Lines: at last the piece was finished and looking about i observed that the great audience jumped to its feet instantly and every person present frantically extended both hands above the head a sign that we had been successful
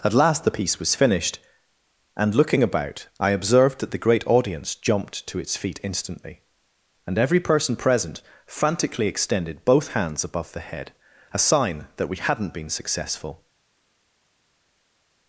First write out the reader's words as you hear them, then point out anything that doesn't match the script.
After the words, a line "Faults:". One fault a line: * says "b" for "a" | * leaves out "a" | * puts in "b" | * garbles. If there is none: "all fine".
at last the piece was finished and looking about i observed that the great audience jumped to its feet instantly and every person present frantically extended both hands above the head a sign that we hadn't been successful
Faults:
* says "hadn't" for "had"